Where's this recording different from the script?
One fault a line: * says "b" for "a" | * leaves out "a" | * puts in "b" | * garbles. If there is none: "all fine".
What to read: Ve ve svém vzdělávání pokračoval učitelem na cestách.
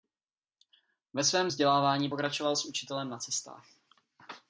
* leaves out "ve"
* puts in "s"